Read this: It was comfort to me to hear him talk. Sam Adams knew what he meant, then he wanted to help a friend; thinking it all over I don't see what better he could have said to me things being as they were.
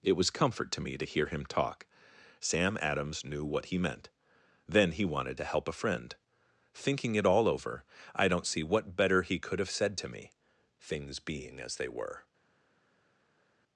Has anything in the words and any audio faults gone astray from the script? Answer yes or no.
no